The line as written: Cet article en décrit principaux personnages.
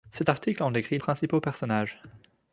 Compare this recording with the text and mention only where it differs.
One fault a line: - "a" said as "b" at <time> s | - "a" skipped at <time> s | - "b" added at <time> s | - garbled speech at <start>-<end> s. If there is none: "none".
none